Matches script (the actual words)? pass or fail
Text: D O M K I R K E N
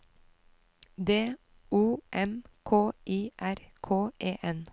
pass